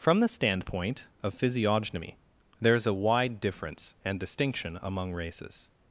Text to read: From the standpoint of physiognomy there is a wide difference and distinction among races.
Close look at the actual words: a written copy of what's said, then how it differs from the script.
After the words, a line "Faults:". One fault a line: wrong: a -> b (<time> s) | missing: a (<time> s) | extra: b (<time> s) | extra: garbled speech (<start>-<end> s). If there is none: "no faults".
From the standpoint of physiognomy there is a wide difference and distinction among races.
Faults:
no faults